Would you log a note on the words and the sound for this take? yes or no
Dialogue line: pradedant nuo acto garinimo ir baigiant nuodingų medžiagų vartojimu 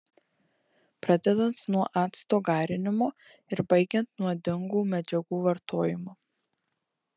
no